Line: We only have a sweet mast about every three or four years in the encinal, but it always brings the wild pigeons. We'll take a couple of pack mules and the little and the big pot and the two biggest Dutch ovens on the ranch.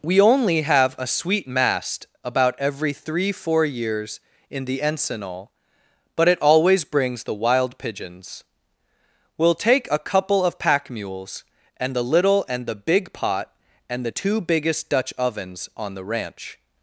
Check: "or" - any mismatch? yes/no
yes